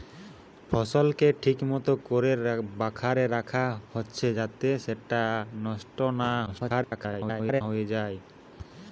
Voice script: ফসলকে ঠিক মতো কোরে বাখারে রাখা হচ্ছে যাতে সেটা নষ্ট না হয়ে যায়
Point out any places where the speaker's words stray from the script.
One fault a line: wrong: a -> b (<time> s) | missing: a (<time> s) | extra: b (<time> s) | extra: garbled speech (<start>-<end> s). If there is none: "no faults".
extra: garbled speech (6.5-7.6 s)